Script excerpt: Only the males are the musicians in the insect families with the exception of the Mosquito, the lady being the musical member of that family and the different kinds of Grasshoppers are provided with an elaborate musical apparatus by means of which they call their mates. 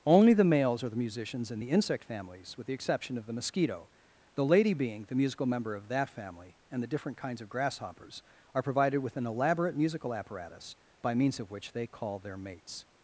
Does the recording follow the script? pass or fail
pass